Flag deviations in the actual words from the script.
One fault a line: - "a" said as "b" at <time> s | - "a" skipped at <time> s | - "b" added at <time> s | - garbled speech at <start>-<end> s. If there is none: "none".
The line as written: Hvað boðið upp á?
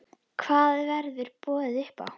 - "verður" added at 0.9 s